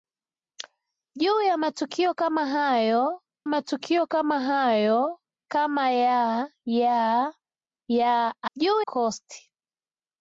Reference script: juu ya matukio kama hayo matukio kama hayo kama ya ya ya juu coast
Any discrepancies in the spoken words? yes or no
no